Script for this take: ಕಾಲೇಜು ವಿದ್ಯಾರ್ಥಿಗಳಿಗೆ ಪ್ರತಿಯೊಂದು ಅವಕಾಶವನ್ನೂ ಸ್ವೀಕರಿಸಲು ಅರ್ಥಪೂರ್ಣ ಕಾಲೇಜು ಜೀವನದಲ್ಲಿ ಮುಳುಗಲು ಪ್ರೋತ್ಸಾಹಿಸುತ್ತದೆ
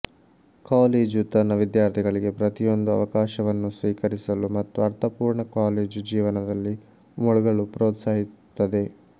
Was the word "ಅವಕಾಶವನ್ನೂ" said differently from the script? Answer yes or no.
no